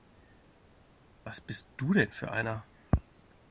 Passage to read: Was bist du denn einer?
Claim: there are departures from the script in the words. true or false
true